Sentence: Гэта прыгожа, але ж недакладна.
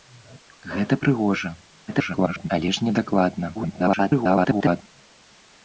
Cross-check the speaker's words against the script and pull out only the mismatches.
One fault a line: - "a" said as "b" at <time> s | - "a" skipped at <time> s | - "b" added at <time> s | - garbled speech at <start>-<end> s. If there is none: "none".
- garbled speech at 1.9-2.5 s
- garbled speech at 3.5-4.8 s